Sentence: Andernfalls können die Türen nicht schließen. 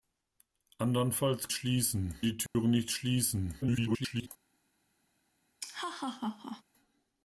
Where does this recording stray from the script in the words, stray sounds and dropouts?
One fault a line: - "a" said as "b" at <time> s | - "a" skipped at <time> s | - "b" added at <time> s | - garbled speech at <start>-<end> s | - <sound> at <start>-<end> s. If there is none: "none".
- "können" said as "schließen" at 1.5 s
- dropout at 2.5-2.5 s
- garbled speech at 3.6-4.3 s
- laugh at 5.6-6.6 s